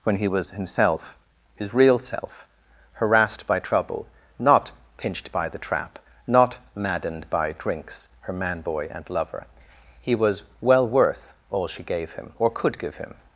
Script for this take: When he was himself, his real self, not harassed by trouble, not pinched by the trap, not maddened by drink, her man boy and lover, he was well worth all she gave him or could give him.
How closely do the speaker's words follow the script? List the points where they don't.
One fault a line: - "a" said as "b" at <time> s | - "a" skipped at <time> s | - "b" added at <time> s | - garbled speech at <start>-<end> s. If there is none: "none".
- "not" skipped at 2.5 s
- "drink" said as "drinks" at 7.6 s